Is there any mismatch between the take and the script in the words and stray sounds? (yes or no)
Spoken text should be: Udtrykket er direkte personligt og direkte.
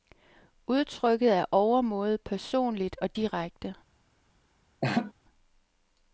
yes